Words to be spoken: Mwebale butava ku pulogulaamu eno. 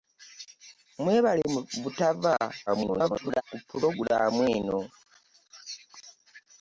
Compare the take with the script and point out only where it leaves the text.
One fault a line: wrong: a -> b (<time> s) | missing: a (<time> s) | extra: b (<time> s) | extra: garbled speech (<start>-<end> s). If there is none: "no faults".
extra: garbled speech (2.7-3.4 s)